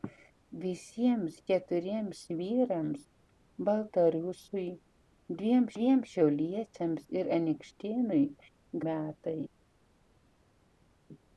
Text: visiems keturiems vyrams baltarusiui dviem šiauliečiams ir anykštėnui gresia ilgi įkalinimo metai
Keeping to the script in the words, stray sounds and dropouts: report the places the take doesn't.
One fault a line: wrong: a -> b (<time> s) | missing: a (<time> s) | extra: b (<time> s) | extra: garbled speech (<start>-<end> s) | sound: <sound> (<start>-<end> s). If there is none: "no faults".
extra: dviem (5.8 s)
missing: gresia ilgi įkalinimo (8.2 s)